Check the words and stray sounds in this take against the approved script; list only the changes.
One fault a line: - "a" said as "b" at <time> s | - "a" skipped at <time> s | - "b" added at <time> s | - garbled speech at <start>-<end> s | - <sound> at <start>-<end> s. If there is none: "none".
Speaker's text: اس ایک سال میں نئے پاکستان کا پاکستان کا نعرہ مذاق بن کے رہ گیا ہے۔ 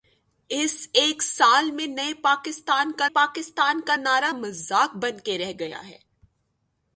none